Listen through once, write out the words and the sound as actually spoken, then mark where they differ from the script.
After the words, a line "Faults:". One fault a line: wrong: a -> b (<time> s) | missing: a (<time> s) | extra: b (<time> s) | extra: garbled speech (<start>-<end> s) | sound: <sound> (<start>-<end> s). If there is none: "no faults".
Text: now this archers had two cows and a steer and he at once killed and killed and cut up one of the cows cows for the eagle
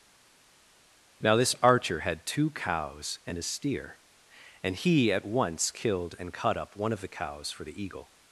now this archer had two cows and a steer and he at once killed and cut up one of the cows for the eagle
Faults:
wrong: archers -> archer (1.6 s)
missing: killed and (6.3 s)
missing: cows (7.5 s)